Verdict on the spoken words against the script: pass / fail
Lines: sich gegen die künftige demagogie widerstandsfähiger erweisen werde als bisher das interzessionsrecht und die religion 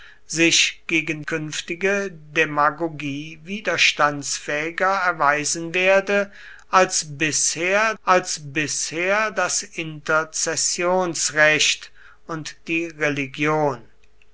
fail